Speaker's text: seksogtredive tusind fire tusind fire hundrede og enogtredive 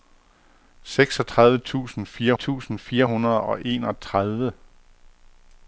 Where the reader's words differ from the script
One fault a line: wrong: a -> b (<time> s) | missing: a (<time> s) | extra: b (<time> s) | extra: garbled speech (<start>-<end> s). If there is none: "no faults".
no faults